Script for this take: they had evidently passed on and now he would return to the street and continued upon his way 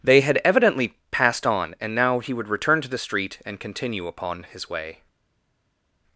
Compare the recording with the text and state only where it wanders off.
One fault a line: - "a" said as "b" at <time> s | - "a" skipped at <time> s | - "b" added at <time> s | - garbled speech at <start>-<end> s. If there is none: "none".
- "continued" said as "continue" at 3.6 s